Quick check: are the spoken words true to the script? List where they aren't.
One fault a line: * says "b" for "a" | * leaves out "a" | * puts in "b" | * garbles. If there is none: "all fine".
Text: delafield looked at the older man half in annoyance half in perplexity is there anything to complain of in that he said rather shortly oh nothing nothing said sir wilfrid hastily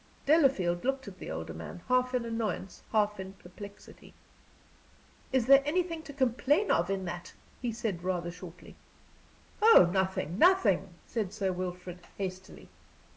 all fine